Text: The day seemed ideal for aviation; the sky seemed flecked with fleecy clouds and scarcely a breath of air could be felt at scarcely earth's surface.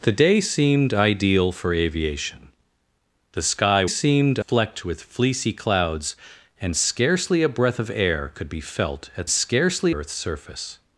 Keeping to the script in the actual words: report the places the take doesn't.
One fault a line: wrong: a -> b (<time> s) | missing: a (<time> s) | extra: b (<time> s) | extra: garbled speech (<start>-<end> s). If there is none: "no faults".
no faults